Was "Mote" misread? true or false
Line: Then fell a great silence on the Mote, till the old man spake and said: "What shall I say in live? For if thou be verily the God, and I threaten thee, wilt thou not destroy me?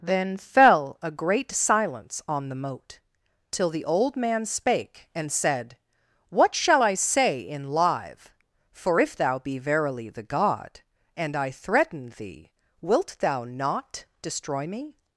false